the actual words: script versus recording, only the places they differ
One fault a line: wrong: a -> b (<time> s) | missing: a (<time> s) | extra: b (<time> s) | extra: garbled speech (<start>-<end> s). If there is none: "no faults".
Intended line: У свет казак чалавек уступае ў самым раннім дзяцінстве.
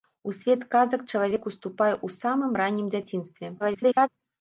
extra: garbled speech (3.6-4.1 s)